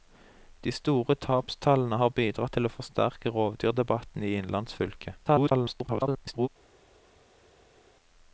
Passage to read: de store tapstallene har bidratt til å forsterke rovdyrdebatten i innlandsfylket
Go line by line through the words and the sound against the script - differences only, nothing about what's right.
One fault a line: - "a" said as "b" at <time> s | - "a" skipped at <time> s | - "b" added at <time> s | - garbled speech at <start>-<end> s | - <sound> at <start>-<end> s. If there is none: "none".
- garbled speech at 5.3-6.5 s